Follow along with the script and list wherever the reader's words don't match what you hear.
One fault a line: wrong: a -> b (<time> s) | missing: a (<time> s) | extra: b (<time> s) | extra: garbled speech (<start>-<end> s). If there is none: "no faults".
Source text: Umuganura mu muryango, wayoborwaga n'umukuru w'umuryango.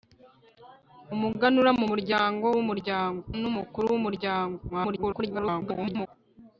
wrong: wayoborwaga -> w'umuryango (2.6 s)
extra: garbled speech (4.7-6.1 s)